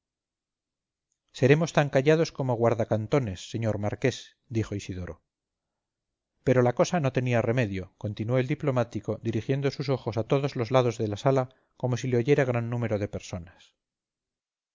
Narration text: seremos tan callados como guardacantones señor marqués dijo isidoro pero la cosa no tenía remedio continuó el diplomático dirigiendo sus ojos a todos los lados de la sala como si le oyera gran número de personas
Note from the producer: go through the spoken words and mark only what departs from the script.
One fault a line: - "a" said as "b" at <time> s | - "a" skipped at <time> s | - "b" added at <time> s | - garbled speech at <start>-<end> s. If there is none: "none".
none